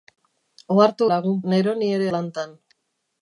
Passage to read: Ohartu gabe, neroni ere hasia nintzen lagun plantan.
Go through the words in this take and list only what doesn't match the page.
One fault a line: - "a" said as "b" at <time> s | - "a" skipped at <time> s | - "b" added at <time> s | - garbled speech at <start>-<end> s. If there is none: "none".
- "gabe" said as "lagun" at 1.1 s
- "hasia nintzen lagun" skipped at 2.1 s